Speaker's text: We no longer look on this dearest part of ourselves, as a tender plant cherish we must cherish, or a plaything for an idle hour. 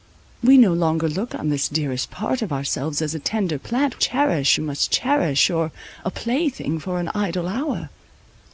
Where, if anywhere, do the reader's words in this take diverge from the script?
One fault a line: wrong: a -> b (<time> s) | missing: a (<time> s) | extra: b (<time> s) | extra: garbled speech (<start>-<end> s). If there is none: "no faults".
no faults